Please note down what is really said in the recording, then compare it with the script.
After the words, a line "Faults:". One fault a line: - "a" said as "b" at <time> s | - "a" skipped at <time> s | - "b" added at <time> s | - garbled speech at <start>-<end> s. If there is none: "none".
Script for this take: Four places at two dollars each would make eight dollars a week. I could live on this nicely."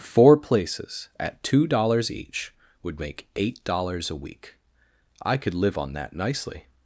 Four places at two dollars each would make eight dollars a week. I could live on that nicely."
Faults:
- "this" said as "that" at 5.9 s